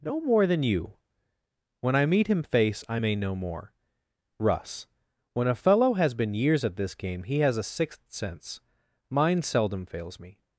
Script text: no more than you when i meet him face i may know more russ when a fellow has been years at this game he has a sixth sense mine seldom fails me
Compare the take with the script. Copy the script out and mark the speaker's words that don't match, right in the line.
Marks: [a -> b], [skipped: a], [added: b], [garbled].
no more than you when i meet him face i may know more russ when a fellow has been years at this game he has a sixth sense mine seldom fails me